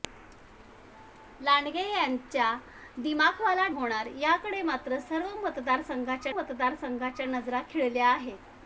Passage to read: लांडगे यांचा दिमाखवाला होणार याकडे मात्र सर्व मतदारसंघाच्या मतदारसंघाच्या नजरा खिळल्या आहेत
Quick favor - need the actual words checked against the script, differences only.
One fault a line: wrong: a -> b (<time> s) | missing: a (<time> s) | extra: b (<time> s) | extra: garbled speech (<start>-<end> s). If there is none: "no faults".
no faults